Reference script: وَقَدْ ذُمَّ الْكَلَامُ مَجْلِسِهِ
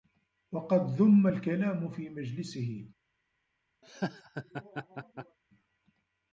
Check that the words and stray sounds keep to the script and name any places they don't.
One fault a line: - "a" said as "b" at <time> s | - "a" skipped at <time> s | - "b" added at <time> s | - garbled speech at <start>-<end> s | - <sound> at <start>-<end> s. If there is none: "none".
- "فِي" added at 1.9 s
- laugh at 3.8-5.4 s